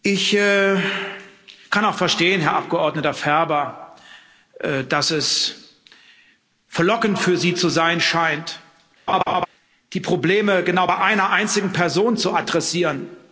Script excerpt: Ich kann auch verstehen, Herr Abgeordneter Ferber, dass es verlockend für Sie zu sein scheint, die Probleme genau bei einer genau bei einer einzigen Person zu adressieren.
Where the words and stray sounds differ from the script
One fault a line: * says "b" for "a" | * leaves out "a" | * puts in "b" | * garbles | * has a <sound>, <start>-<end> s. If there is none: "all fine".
* has a laugh, 9.1-9.5 s
* leaves out "genau bei einer"